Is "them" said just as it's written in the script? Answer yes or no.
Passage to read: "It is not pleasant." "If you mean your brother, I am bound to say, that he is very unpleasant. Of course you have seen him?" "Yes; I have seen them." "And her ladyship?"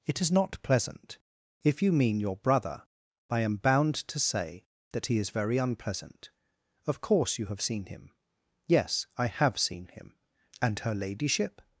no